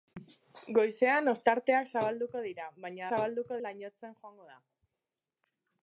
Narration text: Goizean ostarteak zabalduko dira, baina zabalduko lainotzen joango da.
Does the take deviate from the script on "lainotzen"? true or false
false